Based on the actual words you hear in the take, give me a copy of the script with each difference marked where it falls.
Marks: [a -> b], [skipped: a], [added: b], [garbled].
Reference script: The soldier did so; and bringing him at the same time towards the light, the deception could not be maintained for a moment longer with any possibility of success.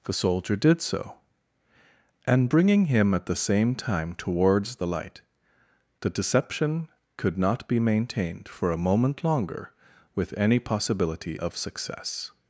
The soldier did so; and bringing him at the same time towards the light, the deception could not be maintained for a moment longer with any possibility of success.